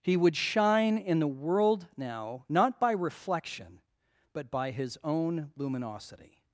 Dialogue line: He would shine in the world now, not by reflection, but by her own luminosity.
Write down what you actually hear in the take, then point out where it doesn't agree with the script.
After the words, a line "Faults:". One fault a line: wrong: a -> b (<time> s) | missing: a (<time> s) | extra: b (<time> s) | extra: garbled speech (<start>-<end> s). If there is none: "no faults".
He would shine in the world now, not by reflection, but by his own luminosity.
Faults:
wrong: her -> his (4.7 s)